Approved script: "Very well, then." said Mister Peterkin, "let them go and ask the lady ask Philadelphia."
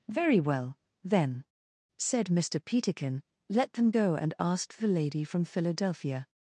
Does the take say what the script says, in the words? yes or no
no